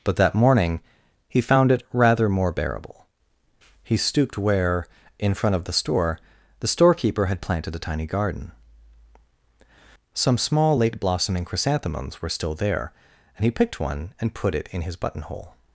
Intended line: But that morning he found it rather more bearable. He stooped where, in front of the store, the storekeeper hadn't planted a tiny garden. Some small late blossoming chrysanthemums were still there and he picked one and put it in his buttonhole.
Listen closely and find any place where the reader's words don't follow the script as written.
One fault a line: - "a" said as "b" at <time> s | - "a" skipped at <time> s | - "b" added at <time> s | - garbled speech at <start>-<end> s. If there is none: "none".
- "hadn't" said as "had" at 7.3 s